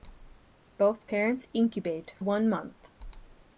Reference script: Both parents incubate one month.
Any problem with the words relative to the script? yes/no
no